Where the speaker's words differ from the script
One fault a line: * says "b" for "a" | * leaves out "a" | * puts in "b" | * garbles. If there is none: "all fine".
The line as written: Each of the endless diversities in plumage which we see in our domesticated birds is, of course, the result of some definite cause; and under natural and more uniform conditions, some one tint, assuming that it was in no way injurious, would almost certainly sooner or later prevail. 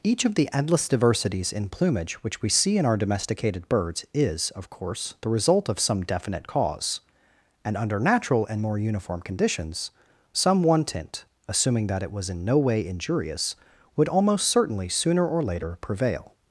all fine